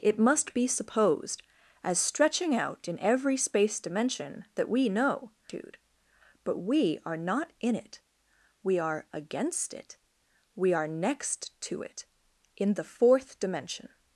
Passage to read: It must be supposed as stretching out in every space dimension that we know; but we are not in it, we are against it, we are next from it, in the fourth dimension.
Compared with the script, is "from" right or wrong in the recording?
wrong